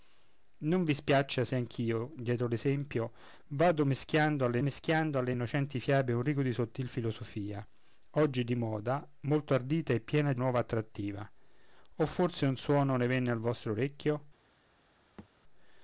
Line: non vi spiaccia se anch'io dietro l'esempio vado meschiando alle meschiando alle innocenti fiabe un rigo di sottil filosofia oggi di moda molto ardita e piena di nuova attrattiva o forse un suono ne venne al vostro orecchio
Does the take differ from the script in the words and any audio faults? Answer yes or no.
yes